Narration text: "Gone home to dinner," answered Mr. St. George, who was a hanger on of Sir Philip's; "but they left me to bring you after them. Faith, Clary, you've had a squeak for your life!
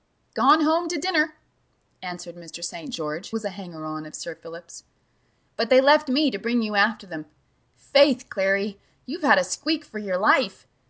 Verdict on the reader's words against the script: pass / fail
fail